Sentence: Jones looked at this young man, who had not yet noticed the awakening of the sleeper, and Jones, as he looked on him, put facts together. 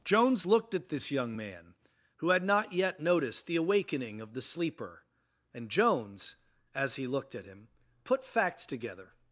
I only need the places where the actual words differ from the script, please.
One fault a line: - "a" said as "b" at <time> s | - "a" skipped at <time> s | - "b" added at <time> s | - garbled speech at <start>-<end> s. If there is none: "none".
- "on" said as "at" at 7.3 s